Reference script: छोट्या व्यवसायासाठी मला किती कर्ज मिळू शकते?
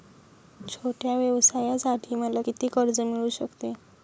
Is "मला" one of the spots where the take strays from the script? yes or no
no